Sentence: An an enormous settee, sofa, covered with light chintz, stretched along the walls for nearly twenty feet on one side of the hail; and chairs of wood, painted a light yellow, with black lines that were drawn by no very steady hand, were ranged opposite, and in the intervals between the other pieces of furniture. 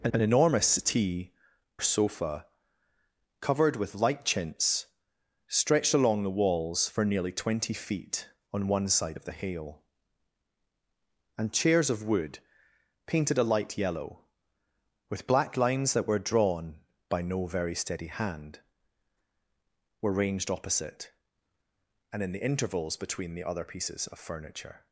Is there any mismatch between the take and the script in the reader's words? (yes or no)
no